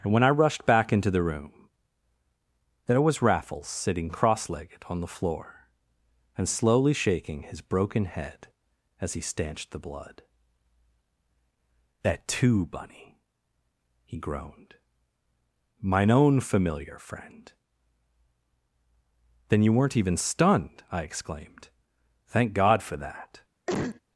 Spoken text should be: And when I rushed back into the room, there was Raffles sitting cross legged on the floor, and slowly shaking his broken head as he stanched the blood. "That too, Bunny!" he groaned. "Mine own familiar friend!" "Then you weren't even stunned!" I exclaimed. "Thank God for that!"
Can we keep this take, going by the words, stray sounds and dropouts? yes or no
no